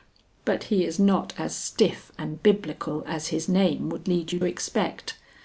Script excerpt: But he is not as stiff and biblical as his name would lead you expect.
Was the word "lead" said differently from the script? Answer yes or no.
no